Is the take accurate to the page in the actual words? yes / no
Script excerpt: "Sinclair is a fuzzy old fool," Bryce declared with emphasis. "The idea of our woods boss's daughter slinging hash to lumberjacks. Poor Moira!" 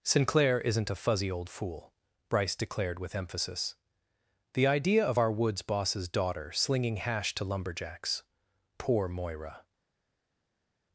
no